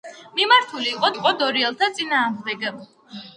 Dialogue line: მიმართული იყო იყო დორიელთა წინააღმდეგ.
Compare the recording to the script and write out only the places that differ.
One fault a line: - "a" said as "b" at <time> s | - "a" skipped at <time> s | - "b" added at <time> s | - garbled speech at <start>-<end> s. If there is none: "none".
none